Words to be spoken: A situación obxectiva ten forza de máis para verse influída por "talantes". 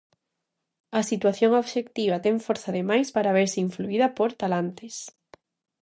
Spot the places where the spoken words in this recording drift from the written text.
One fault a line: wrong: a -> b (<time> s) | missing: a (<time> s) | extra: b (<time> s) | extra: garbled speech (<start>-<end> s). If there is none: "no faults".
no faults